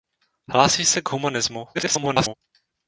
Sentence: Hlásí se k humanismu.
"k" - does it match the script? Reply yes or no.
yes